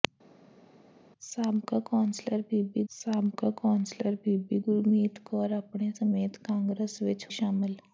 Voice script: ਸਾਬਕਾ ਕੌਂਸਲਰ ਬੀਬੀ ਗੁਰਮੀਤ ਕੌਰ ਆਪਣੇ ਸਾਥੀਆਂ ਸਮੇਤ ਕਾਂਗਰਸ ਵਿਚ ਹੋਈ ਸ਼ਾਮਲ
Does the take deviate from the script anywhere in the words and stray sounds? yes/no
yes